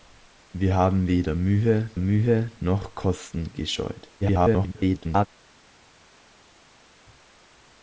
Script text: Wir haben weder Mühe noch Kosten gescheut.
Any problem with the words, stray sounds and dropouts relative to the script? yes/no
yes